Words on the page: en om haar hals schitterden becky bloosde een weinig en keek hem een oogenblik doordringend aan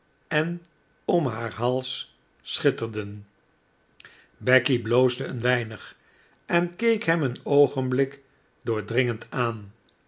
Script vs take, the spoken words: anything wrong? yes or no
no